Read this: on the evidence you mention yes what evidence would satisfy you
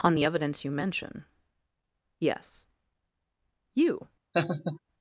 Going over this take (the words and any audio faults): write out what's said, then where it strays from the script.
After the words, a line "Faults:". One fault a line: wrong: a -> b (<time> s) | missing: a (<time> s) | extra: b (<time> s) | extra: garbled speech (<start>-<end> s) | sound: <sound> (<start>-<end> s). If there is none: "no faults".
on the evidence you mention yes you
Faults:
missing: what evidence would satisfy (2.7 s)
sound: laugh (4.3-4.8 s)